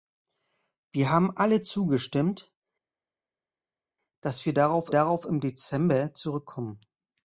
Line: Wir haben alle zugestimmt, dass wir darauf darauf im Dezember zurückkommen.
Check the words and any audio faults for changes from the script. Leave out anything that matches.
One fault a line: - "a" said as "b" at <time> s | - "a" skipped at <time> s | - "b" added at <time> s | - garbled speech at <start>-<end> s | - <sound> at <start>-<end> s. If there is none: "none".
none